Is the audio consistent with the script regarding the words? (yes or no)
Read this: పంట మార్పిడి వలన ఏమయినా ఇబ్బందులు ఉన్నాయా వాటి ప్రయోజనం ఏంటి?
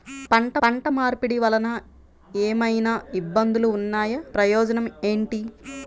no